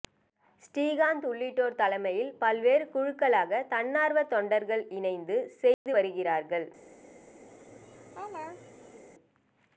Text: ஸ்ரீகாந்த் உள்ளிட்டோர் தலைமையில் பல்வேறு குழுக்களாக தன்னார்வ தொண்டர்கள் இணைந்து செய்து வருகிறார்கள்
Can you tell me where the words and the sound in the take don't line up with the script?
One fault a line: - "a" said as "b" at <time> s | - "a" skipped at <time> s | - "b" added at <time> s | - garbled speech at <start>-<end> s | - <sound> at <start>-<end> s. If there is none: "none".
- dropout at 5.7-5.9 s
- laugh at 7.5-9.0 s